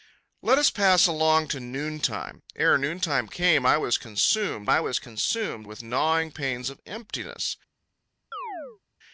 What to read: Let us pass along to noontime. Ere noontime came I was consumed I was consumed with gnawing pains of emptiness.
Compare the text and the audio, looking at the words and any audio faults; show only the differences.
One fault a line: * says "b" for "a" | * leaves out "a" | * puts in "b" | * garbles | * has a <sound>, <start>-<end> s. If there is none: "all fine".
* has a chirp, 8.3-8.8 s